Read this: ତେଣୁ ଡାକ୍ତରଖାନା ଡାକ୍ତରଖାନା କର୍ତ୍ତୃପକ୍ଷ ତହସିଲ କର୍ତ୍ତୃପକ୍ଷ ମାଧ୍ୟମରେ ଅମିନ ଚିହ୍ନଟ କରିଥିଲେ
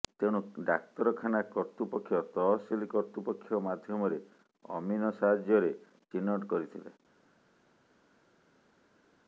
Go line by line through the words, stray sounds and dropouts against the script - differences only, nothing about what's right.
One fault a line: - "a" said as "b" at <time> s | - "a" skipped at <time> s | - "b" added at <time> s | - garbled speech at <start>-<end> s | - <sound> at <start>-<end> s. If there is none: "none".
- "ଡାକ୍ତରଖାନା" skipped at 1.4 s
- "ସାହାଯ୍ୟରେ" added at 5.2 s